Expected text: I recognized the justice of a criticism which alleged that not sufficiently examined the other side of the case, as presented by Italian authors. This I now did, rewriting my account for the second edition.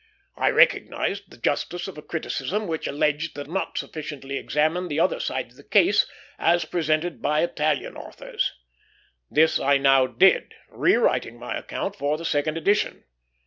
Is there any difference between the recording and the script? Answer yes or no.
no